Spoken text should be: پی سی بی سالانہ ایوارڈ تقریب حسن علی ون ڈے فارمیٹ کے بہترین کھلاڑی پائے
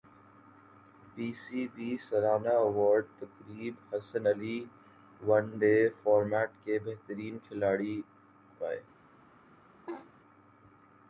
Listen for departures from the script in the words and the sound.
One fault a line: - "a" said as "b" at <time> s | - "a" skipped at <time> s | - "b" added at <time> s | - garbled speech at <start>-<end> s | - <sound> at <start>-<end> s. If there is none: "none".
- laugh at 9.9-10.1 s